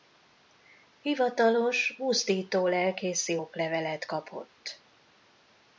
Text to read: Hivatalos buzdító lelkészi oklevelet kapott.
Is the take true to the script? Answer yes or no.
yes